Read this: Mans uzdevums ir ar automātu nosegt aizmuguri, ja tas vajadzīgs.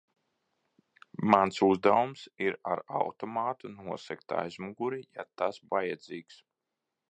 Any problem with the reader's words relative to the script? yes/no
no